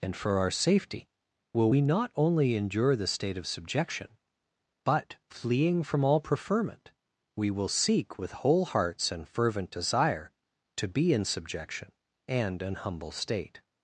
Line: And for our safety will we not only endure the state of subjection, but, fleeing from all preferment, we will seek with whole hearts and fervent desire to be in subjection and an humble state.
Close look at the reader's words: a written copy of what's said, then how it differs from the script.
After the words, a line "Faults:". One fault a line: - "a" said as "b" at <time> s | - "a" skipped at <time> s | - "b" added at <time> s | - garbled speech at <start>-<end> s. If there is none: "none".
And for our safety will we not only endure the state of subjection, but, fleeing from all preferment, we will seek with whole hearts and fervent desire to be in subjection and an humble state.
Faults:
none